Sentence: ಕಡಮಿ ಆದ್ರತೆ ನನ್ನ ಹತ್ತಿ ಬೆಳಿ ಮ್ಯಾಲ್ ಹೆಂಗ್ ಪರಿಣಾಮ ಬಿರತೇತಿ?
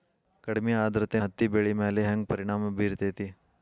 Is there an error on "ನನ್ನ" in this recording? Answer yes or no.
yes